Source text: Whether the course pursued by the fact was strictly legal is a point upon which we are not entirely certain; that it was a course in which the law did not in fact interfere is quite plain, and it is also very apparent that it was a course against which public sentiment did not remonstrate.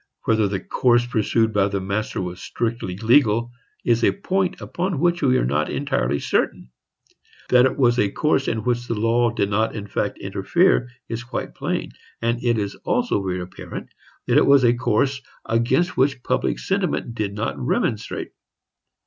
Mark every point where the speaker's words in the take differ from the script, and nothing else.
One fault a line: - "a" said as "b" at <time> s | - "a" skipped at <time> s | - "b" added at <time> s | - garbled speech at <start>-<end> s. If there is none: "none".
- "fact" said as "master" at 1.8 s